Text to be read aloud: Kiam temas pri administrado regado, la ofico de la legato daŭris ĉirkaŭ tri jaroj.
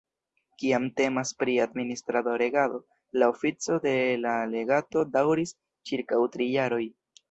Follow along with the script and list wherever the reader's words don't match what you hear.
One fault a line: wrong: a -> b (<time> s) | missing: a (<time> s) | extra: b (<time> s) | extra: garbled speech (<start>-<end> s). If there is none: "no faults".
no faults